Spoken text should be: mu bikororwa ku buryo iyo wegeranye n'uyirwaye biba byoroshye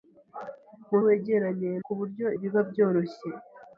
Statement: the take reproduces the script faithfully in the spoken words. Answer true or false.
false